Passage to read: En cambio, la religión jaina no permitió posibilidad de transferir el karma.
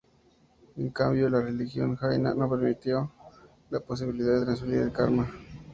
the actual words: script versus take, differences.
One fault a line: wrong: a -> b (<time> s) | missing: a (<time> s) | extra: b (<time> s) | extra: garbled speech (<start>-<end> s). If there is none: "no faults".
extra: la (3.7 s)